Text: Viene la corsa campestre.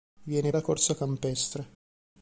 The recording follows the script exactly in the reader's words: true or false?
true